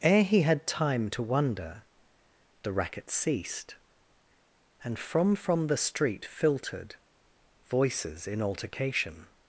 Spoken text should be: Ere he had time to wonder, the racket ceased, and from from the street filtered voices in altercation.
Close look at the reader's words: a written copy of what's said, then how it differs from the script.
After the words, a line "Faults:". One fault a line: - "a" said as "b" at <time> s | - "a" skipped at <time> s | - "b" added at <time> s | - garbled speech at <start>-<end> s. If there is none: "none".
Ere he had time to wonder, the racket ceased, and from from the street filtered voices in altercation.
Faults:
none